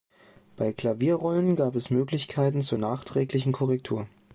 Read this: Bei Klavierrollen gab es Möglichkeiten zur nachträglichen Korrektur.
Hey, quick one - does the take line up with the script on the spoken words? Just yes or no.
yes